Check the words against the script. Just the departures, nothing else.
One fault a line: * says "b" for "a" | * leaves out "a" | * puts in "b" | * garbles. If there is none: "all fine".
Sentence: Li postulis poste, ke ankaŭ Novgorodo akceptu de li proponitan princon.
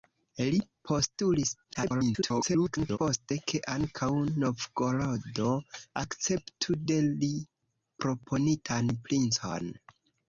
* garbles